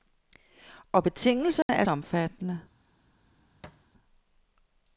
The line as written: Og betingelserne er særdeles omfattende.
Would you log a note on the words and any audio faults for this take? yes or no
yes